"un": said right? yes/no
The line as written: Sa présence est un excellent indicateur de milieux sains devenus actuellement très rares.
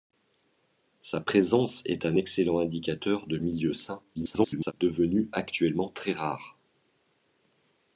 yes